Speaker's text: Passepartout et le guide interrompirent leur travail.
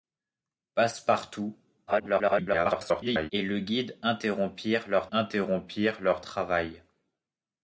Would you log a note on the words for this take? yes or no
yes